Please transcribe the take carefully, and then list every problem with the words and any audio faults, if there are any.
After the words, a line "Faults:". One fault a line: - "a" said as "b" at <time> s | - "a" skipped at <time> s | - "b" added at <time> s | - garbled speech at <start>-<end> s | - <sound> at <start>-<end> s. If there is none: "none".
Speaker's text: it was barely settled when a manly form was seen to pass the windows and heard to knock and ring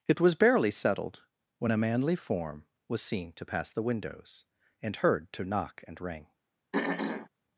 it was barely settled when a manly form was seen to pass the windows and heard to knock and ring
Faults:
- throat clearing at 6.7-7.3 s